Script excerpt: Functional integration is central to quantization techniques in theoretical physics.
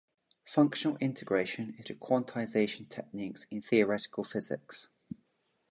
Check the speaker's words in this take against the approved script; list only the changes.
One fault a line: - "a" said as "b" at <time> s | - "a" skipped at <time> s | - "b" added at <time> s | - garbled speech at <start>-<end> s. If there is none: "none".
- "central" skipped at 1.9 s